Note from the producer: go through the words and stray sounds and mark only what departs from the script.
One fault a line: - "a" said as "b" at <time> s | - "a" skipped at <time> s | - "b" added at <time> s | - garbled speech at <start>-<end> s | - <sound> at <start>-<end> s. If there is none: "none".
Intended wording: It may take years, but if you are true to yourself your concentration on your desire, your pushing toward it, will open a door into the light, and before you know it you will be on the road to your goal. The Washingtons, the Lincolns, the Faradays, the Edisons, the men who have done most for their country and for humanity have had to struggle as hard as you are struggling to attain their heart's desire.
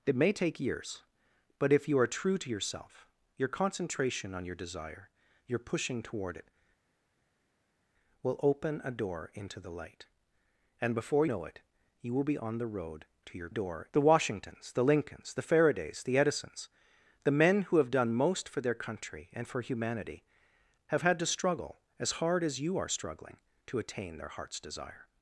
- "you" skipped at 11.3 s
- "goal" said as "door" at 13.5 s